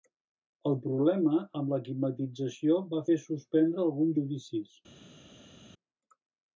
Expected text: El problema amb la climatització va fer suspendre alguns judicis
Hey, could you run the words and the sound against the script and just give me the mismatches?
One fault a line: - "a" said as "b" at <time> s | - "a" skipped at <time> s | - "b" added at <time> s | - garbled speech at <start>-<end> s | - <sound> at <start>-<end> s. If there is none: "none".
none